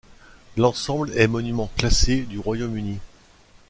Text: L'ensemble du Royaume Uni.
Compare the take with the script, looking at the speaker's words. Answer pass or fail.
fail